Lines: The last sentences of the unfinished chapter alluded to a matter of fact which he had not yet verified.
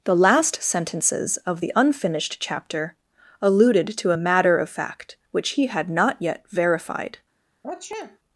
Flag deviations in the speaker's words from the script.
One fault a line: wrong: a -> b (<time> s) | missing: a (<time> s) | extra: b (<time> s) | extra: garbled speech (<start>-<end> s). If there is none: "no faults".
no faults